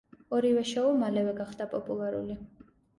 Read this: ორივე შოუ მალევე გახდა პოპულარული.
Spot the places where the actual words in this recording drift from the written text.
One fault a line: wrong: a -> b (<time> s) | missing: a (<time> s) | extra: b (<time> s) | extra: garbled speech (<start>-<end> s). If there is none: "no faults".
no faults